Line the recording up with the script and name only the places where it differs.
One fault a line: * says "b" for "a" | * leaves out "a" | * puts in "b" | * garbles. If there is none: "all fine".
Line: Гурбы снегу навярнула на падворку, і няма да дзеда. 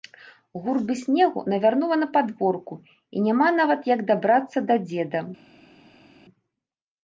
* puts in "нават як дабрацца"